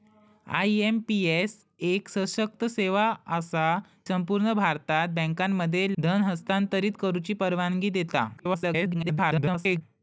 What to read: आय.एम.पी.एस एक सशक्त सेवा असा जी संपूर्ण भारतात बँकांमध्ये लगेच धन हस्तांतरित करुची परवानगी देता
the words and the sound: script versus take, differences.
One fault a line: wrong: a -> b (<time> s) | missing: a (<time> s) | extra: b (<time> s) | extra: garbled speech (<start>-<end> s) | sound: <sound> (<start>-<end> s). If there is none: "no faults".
missing: जी (3.6 s)
missing: लगेच (5.9 s)
extra: garbled speech (8.4-9.8 s)